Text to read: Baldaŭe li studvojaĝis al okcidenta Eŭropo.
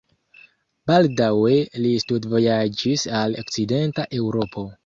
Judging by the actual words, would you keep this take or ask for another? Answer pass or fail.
pass